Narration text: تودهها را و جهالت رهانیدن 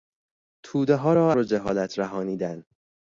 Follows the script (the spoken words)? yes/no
yes